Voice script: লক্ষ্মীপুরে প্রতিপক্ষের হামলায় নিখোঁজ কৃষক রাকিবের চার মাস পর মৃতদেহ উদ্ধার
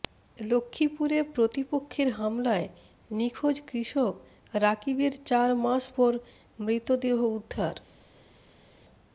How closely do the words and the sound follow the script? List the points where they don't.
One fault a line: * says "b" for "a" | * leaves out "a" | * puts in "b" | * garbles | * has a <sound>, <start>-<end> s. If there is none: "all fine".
all fine